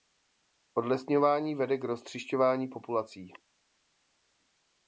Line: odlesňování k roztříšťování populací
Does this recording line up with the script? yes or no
no